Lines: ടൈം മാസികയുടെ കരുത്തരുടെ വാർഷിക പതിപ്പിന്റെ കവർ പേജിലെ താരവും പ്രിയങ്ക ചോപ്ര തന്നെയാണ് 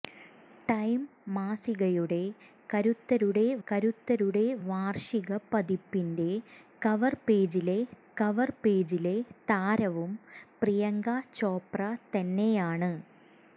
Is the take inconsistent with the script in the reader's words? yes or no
yes